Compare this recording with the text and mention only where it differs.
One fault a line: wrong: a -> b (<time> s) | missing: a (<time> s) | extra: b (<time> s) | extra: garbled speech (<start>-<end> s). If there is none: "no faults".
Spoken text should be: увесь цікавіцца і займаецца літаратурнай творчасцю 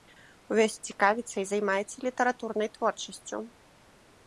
no faults